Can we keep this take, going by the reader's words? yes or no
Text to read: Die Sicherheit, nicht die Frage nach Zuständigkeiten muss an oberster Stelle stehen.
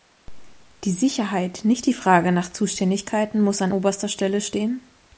yes